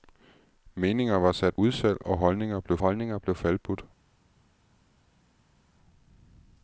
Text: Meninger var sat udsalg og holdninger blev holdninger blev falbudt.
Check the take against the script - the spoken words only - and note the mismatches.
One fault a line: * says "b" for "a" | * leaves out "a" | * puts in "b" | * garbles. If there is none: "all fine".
all fine